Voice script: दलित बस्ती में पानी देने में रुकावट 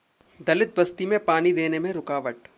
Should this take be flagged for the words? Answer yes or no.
no